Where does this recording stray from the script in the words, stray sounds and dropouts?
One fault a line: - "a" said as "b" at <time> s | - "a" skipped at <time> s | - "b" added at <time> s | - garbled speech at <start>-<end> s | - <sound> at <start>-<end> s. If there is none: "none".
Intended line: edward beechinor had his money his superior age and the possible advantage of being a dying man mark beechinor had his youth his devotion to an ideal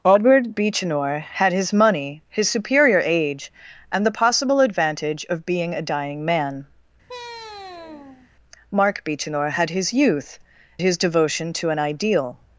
- sigh at 7.1-8.3 s